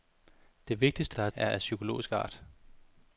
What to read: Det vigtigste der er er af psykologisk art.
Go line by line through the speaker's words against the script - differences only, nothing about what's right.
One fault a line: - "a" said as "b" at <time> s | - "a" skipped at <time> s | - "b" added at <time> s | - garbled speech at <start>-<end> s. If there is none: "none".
none